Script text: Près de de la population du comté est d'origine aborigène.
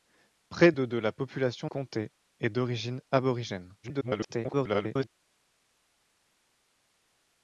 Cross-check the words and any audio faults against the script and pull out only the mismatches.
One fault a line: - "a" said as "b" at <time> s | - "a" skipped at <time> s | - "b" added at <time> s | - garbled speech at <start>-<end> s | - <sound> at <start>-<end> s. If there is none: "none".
- "du" skipped at 1.7 s
- garbled speech at 3.8-5.1 s